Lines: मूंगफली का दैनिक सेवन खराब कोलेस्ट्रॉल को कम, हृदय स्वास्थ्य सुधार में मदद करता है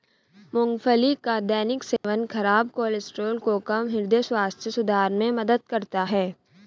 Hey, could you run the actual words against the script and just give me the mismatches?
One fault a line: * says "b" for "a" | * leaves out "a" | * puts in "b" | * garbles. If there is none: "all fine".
all fine